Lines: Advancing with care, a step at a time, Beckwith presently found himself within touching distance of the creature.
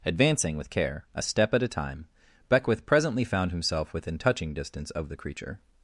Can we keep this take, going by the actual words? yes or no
yes